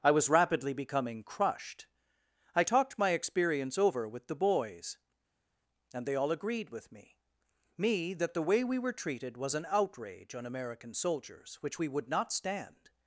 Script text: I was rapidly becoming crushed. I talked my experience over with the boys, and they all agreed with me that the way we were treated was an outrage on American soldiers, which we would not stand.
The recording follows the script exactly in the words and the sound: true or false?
false